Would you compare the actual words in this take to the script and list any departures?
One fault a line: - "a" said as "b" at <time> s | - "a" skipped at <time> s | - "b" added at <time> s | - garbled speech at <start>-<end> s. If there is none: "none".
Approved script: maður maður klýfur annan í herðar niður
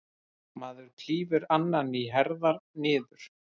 - "maður" skipped at 0.9 s